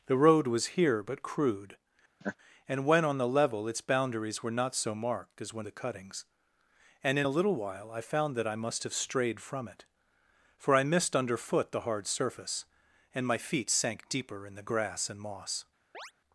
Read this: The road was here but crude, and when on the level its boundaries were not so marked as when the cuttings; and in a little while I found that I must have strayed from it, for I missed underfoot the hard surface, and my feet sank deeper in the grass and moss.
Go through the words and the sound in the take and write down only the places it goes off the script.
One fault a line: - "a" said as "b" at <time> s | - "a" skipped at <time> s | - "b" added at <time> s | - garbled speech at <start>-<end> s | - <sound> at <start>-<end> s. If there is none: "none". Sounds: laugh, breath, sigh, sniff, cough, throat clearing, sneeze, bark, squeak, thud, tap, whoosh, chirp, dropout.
- laugh at 2.2-2.4 s
- chirp at 15.9-16.1 s